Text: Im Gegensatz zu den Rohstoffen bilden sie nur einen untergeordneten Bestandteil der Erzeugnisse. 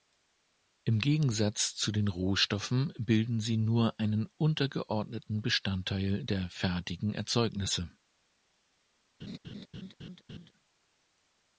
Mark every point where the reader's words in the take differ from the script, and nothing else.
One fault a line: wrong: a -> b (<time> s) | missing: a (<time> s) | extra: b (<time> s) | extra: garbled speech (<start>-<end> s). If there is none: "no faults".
extra: fertigen (6.5 s)